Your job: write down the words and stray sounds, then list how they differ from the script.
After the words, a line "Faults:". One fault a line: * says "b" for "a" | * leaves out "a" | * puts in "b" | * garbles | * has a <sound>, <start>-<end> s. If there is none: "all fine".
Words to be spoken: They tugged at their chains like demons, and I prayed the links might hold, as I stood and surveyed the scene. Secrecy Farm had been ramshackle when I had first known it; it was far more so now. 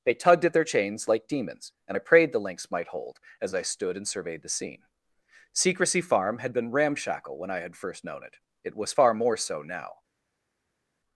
They tugged at their chains like demons, and I prayed the links might hold, as I stood and surveyed the scene. Secrecy Farm had been ramshackle when I had first known it; it was far more so now.
Faults:
all fine